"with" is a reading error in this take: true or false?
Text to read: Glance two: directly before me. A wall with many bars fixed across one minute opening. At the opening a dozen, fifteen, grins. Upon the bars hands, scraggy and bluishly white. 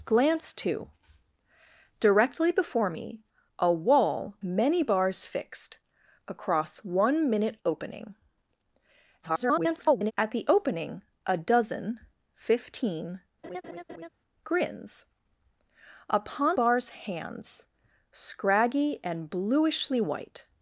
true